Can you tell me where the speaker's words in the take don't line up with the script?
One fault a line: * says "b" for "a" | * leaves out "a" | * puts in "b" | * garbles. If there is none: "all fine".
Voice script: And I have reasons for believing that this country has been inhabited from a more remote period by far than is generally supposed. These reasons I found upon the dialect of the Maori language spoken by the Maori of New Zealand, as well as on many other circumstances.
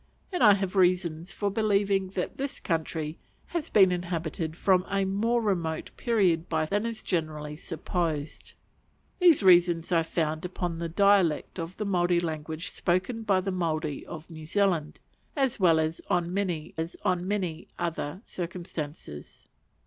* leaves out "far"
* puts in "as on many"